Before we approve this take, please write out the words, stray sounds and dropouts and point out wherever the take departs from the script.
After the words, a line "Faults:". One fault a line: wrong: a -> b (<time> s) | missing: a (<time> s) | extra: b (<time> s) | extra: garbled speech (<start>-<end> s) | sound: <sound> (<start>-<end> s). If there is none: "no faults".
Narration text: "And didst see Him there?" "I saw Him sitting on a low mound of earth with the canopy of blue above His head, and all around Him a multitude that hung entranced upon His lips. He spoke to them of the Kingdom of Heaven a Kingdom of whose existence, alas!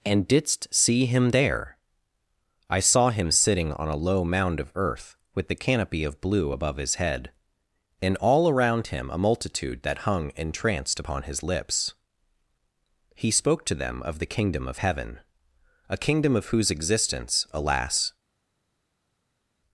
"And didst see Him there?" "I saw Him sitting on a low mound of earth with the canopy of blue above His head, and all around Him a multitude that hung entranced upon His lips. He spoke to them of the Kingdom of Heaven a Kingdom of whose existence, alas!
Faults:
no faults